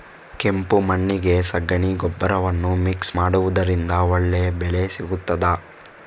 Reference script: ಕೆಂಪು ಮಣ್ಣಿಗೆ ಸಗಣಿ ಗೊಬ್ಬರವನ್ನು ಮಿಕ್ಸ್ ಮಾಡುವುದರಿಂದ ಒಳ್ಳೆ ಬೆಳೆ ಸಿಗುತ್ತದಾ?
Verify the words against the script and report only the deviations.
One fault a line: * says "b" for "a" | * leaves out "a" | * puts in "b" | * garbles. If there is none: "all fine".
all fine